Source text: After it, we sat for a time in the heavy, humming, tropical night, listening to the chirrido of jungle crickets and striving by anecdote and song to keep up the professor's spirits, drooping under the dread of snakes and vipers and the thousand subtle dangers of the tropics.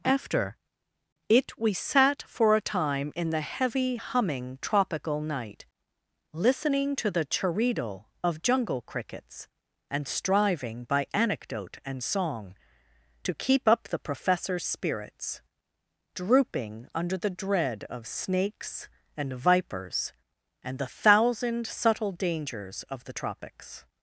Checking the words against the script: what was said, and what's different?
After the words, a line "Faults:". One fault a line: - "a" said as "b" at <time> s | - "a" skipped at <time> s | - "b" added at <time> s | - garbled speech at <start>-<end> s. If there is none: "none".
After it, we sat for a time in the heavy, humming, tropical night, listening to the chirrido of jungle crickets and striving by anecdote and song to keep up the professor's spirits, drooping under the dread of snakes and vipers and the thousand subtle dangers of the tropics.
Faults:
none